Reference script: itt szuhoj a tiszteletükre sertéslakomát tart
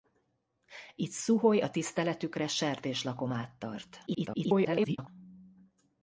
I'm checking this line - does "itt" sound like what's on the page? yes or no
yes